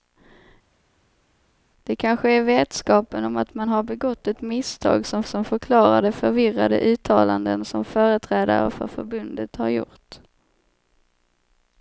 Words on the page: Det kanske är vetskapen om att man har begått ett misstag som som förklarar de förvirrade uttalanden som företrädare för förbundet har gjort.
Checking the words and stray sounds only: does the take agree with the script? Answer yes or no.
yes